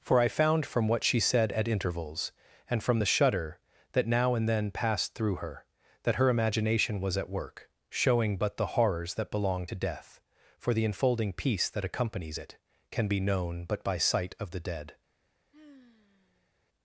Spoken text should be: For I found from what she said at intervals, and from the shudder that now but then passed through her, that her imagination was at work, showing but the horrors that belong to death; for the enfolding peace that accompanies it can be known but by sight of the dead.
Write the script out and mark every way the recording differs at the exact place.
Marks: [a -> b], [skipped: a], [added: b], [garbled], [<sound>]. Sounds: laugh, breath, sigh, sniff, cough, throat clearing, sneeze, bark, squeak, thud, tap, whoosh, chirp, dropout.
For I found from what she said at intervals, and from the shudder that now [but -> and] then passed through her, that her imagination was at work, showing but the horrors that belong to death; for the enfolding peace that accompanies it can be known but by sight of the dead. [sigh]